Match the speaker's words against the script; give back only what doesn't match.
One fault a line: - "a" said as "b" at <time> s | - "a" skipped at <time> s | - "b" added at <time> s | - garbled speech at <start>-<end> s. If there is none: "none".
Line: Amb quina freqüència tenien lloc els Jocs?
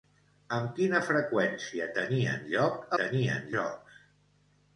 - "els" said as "tenien" at 3.0 s